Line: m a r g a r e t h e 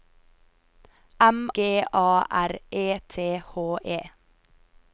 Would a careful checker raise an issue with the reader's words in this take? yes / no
yes